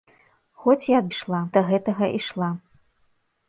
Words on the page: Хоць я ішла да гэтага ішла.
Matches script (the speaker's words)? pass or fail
pass